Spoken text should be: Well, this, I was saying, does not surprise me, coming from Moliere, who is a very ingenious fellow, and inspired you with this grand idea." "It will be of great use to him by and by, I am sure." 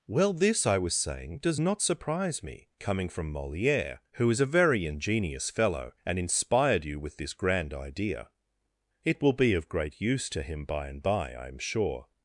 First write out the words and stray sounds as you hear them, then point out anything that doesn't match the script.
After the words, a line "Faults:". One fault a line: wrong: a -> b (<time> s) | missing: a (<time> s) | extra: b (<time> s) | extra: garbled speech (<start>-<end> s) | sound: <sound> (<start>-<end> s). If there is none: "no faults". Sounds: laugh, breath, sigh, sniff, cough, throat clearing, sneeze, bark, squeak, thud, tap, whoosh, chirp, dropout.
Well, this, I was saying, does not surprise me, coming from Moliere, who is a very ingenious fellow, and inspired you with this grand idea." "It will be of great use to him by and by, I am sure."
Faults:
no faults